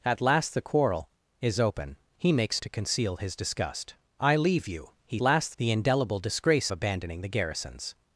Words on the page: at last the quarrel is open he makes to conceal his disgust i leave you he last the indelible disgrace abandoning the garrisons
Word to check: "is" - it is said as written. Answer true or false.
true